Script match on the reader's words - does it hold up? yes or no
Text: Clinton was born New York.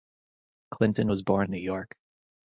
yes